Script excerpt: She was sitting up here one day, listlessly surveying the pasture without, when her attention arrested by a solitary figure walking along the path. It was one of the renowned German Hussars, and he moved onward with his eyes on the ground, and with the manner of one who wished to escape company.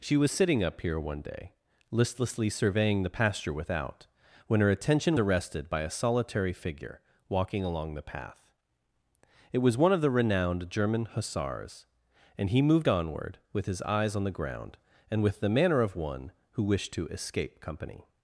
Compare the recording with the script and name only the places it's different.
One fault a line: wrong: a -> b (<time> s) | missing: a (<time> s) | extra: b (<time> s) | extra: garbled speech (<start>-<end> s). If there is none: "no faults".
no faults